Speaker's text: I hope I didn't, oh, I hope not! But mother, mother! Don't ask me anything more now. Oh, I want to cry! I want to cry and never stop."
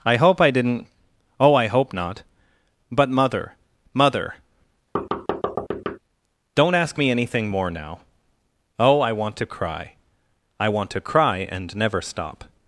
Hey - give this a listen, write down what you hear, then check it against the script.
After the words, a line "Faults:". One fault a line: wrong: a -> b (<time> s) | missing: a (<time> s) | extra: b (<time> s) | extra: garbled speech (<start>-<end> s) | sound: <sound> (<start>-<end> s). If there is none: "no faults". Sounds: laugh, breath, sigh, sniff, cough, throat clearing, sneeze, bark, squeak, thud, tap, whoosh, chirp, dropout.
I hope I didn't, oh, I hope not! But mother, mother! Don't ask me anything more now. Oh, I want to cry! I want to cry and never stop."
Faults:
sound: thud (4.9-6.0 s)